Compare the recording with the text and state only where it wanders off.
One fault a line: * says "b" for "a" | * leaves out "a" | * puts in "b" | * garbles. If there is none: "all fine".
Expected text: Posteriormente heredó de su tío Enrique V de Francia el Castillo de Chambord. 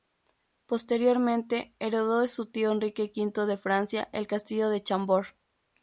all fine